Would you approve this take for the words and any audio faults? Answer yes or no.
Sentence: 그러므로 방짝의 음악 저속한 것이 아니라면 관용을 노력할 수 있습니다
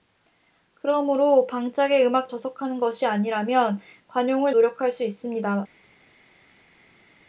yes